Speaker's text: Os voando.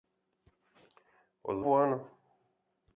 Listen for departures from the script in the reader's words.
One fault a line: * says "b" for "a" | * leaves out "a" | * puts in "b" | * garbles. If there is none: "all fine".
all fine